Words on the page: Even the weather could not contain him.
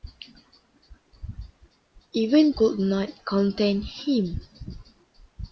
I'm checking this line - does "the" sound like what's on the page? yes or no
no